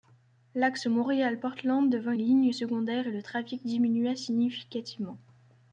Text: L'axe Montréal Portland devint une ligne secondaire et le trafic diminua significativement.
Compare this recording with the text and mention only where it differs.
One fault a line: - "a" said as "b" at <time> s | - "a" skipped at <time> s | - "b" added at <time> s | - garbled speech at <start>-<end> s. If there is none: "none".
none